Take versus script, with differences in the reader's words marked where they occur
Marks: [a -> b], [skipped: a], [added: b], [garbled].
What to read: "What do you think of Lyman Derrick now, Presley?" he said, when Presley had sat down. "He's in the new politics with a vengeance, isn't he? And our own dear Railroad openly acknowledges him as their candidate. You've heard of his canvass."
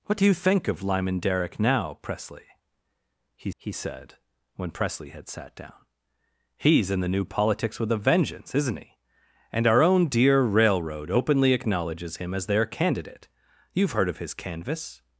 "What do you think of Lyman Derrick now, Presley?" he [added: he] said, when Presley had sat down. "He's in the new politics with a vengeance, isn't he? And our own dear Railroad openly acknowledges him as their candidate. You've heard of his canvass."